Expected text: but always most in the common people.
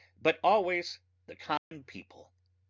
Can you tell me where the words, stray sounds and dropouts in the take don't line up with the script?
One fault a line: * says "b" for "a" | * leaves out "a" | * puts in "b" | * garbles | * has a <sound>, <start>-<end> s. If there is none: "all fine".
* leaves out "most in"
* has a dropout, 1.6-1.7 s